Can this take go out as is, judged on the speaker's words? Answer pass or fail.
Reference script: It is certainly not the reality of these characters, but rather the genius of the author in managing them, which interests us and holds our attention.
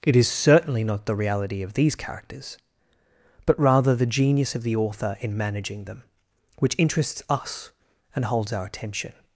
pass